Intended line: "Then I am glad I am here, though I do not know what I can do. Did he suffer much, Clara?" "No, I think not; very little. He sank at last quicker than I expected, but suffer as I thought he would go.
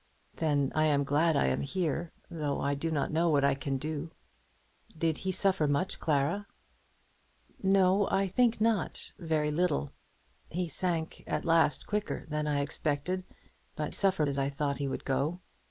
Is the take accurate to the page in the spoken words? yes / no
yes